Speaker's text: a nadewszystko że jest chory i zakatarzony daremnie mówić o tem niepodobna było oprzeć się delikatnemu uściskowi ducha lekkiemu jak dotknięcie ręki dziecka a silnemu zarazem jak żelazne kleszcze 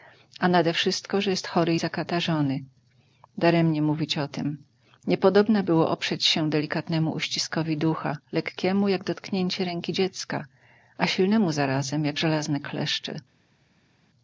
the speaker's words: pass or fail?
pass